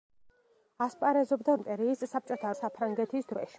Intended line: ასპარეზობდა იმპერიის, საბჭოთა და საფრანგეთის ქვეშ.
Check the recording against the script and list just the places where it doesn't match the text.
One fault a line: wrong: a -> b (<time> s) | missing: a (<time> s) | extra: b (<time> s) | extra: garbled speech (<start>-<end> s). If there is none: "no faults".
no faults